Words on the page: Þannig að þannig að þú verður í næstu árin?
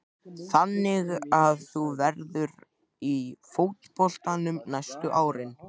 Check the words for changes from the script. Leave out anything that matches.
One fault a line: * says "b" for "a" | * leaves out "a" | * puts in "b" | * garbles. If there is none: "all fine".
* leaves out "þannig að"
* puts in "fótboltanum"